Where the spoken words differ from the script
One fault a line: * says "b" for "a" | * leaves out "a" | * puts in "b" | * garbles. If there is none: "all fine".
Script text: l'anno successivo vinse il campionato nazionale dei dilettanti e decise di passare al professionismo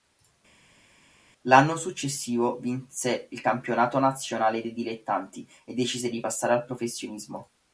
all fine